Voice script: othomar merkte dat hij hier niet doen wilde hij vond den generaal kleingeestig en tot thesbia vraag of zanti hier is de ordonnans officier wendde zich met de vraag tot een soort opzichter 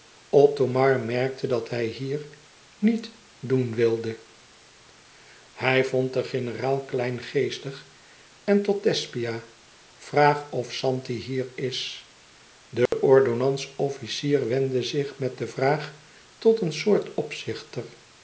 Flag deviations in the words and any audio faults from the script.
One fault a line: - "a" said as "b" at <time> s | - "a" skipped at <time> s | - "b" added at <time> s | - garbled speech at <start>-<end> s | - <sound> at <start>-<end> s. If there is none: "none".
- dropout at 12.9-12.9 s